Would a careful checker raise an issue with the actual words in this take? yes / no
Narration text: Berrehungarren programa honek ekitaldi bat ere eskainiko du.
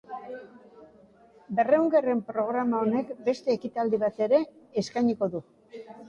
yes